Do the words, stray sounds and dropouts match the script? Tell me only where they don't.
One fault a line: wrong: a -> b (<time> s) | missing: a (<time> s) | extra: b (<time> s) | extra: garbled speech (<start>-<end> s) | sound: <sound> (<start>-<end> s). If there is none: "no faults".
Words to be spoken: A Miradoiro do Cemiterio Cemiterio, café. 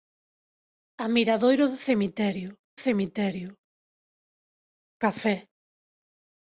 no faults